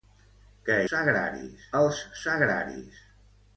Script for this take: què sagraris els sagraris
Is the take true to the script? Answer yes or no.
yes